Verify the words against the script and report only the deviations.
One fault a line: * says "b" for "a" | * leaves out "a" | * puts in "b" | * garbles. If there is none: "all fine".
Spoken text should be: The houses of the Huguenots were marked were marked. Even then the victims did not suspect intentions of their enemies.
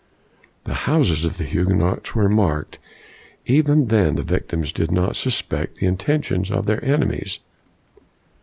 * leaves out "were marked"
* puts in "the"